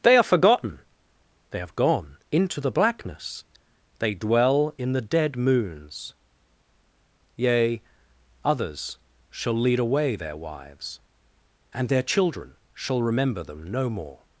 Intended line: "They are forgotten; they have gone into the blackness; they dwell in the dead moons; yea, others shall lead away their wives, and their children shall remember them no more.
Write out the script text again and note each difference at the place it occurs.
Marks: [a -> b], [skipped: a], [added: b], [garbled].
"They are forgotten; they have gone into the blackness; they dwell in the dead moons; yea, others shall lead away their wives, and their children shall remember them no more.